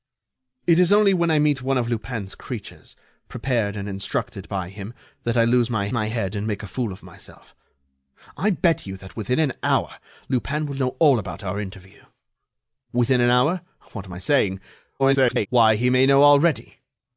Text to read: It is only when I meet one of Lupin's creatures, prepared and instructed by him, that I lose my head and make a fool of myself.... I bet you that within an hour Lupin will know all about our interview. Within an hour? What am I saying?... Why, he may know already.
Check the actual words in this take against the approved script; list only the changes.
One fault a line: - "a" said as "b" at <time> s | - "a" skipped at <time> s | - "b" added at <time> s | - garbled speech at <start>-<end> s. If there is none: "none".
- "my" added at 5.9 s
- garbled speech at 15.0-15.5 s